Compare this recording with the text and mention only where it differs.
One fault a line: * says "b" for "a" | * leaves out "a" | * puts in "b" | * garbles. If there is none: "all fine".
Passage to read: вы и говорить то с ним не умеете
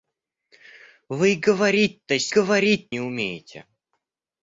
* says "говорить" for "ним"